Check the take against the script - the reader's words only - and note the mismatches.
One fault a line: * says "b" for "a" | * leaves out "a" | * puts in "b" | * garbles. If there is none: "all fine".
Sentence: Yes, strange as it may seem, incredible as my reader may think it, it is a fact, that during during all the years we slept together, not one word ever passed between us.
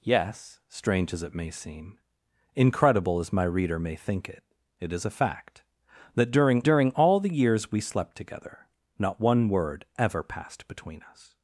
all fine